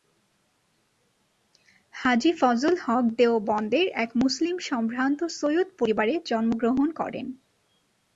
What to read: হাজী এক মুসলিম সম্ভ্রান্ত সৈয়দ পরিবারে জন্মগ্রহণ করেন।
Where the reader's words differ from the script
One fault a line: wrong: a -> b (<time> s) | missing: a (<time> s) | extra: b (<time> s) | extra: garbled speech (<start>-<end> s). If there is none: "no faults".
extra: ফজল হক দেওবন্দের (2.4 s)